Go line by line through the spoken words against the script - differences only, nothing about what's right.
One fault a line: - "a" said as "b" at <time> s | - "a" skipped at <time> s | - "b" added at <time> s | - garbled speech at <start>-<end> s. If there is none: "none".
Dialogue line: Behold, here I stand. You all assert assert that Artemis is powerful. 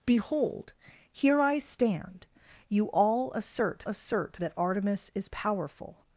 none